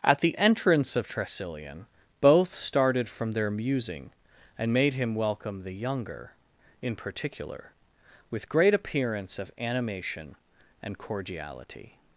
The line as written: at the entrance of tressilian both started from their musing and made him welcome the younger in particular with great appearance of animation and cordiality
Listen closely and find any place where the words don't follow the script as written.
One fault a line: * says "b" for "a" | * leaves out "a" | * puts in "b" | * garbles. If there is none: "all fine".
all fine